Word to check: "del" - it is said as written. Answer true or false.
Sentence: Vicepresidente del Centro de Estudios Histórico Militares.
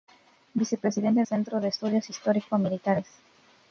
false